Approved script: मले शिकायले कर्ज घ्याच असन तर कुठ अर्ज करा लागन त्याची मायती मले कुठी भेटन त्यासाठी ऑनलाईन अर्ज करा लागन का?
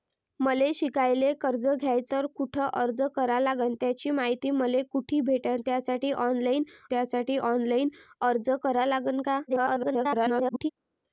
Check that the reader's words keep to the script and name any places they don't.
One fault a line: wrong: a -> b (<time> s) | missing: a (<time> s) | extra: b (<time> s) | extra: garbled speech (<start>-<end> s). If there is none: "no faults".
missing: असन (2.1 s)
extra: त्यासाठी ऑनलाईन (6.9 s)
extra: garbled speech (9.5-10.7 s)